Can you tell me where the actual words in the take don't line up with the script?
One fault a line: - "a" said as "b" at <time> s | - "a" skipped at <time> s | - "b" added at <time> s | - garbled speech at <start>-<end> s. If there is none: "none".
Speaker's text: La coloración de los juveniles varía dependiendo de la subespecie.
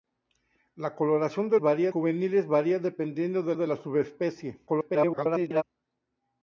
- "los" said as "varía" at 1.6 s
- "de" added at 3.5 s
- garbled speech at 4.7-5.6 s